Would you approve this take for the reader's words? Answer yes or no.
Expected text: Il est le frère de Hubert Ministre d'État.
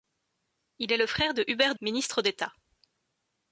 yes